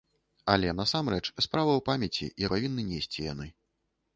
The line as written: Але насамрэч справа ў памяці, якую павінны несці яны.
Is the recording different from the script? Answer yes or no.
yes